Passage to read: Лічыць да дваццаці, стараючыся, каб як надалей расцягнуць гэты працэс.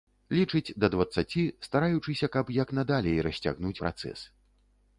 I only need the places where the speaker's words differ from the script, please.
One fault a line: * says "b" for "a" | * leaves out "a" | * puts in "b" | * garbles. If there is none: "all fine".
* leaves out "гэты"